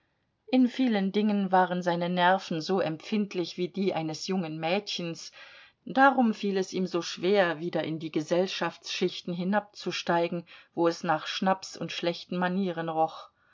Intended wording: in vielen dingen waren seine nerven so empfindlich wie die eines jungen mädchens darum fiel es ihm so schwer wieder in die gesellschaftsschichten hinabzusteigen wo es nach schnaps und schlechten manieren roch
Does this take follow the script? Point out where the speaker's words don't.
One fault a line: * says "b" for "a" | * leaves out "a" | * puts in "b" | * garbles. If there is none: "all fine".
all fine